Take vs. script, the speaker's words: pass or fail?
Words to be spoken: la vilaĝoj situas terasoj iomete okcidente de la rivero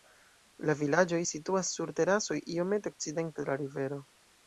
fail